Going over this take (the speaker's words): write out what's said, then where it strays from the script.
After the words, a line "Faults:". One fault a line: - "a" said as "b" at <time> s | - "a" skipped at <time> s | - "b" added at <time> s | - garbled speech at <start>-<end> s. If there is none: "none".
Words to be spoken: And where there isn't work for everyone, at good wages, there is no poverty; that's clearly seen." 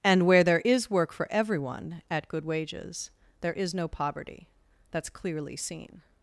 And where there is work for everyone, at good wages, there is no poverty; that's clearly seen."
Faults:
- "isn't" said as "is" at 0.6 s